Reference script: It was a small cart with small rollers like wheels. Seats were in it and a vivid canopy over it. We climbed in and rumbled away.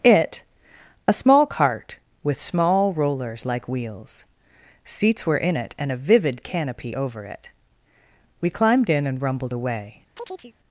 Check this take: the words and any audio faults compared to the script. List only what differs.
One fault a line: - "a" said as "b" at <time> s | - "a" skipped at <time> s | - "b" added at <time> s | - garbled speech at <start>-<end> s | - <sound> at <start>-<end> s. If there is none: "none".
- "was" skipped at 0.4 s
- chirp at 10.2-10.5 s